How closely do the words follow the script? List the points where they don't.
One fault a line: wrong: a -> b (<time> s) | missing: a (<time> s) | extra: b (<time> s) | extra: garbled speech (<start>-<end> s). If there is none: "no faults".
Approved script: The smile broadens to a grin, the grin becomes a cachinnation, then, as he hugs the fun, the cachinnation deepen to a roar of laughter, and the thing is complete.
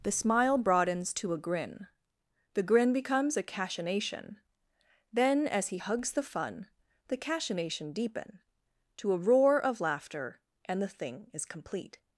no faults